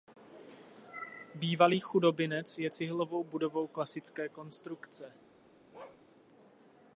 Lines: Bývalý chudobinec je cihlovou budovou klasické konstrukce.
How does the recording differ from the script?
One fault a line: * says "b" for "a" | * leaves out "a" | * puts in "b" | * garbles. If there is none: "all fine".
all fine